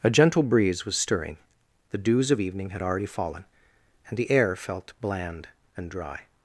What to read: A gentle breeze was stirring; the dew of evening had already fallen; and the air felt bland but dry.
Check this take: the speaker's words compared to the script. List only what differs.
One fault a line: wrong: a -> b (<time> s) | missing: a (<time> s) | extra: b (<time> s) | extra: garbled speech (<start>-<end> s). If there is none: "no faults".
wrong: dew -> dews (2.0 s)
wrong: but -> and (5.8 s)